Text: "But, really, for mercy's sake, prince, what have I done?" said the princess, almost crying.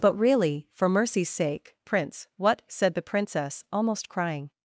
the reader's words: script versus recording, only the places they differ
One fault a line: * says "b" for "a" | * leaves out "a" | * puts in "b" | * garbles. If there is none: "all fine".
* leaves out "have I done"